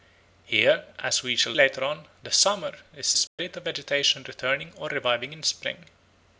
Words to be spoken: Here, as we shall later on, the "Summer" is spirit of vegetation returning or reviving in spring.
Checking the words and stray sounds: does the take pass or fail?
fail